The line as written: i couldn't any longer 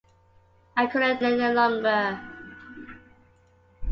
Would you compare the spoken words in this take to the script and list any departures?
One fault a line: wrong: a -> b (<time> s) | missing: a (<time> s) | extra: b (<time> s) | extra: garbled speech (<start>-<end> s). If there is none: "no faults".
no faults